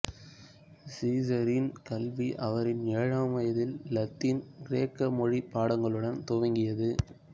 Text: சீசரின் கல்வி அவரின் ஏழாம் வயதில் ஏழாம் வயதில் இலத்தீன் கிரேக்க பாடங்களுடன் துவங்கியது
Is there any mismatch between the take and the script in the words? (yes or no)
yes